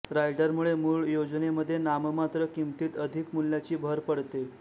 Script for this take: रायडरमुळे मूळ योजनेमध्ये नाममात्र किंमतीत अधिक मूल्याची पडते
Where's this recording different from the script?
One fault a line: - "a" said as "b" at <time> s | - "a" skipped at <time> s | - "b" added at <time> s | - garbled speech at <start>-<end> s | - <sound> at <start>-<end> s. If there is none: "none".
- "भर" added at 3.8 s